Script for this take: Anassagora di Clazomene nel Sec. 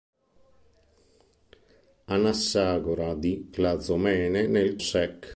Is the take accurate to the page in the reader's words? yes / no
yes